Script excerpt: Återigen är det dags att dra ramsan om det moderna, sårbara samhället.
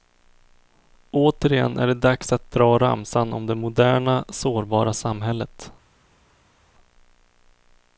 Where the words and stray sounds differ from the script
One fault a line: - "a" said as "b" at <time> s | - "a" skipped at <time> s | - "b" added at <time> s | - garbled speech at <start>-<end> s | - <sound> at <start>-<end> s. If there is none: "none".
none